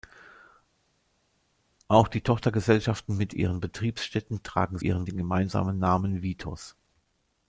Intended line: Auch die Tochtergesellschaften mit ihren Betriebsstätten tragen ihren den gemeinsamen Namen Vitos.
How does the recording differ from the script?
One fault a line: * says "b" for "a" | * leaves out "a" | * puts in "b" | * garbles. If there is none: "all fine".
all fine